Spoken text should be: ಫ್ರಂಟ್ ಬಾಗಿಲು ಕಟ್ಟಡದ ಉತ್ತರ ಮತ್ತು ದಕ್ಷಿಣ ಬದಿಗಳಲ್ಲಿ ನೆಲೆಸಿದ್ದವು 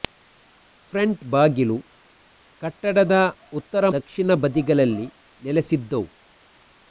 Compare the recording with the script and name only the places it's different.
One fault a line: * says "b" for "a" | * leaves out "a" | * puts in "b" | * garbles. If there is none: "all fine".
* leaves out "ಮತ್ತು"